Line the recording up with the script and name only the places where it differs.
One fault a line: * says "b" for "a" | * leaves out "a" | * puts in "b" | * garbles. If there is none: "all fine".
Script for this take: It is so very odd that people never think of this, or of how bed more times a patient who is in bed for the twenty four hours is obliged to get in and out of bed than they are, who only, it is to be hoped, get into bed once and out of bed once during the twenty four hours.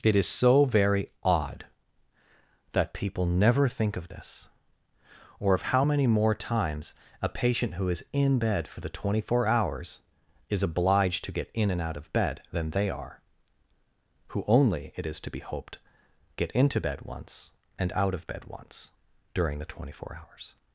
* says "many" for "bed"